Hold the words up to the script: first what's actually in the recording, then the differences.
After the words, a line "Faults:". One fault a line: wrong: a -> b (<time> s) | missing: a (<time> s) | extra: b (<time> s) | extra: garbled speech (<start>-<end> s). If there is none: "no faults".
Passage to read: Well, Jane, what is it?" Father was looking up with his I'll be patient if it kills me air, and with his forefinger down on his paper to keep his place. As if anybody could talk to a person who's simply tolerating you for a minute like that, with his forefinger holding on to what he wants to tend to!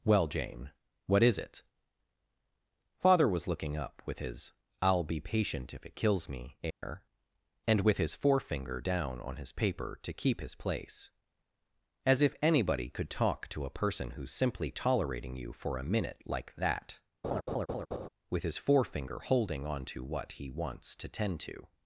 Well, Jane, what is it?" Father was looking up with his I'll be patient if it kills me air, and with his forefinger down on his paper to keep his place. As if anybody could talk to a person who's simply tolerating you for a minute like that, with his forefinger holding on to what he wants to tend to!
Faults:
no faults